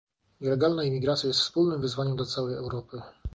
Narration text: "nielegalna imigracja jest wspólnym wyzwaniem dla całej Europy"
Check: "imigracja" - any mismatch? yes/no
no